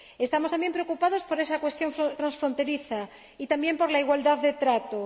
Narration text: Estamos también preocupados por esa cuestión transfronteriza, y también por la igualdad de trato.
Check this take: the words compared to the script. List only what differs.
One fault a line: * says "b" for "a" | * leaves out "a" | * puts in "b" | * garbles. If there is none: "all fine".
all fine